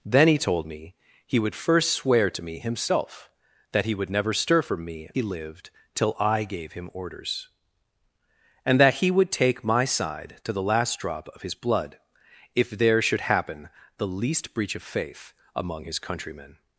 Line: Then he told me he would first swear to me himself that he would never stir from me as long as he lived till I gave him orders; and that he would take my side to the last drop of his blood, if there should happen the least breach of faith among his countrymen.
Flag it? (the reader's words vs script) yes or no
yes